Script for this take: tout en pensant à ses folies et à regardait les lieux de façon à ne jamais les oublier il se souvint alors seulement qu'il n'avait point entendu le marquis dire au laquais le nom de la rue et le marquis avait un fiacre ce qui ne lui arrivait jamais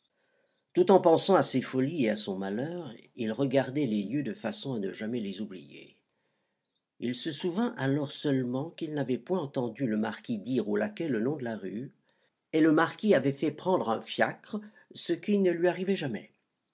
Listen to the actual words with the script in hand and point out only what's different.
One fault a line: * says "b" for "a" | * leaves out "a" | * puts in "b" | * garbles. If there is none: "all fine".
* puts in "son malheur il"
* puts in "fait prendre"